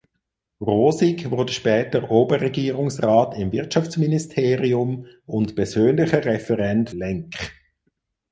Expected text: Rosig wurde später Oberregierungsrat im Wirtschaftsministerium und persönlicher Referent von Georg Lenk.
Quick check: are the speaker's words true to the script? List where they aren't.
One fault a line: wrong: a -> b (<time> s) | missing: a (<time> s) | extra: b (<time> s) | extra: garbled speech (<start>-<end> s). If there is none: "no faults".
missing: von Georg (6.9 s)